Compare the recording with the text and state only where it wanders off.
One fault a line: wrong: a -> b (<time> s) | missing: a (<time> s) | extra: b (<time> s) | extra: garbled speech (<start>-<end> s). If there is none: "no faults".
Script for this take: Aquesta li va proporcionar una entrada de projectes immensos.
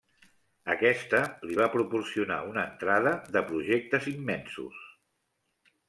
no faults